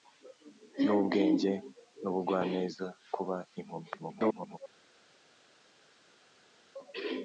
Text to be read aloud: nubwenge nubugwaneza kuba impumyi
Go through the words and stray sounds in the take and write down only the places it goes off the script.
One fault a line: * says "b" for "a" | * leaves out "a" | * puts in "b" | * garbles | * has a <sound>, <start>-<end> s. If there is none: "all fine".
* garbles